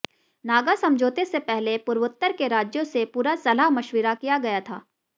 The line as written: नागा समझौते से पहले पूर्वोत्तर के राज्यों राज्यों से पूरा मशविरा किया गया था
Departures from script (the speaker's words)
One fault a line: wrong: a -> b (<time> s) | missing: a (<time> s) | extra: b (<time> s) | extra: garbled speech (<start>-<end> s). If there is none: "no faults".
missing: राज्यों (2.8 s)
extra: सलाह (3.4 s)